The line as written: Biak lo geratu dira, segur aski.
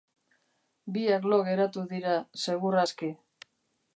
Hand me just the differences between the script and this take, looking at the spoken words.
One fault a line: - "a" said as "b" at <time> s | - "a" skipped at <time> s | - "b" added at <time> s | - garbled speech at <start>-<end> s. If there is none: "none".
none